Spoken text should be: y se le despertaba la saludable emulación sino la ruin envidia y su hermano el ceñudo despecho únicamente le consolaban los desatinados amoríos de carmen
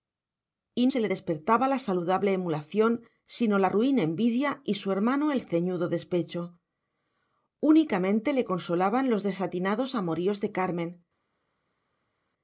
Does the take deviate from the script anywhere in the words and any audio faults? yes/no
no